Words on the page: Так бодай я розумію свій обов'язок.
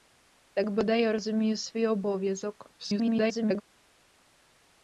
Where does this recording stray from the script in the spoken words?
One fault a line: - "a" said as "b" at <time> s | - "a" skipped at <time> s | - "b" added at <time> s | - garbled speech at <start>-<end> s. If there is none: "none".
- garbled speech at 2.8-3.6 s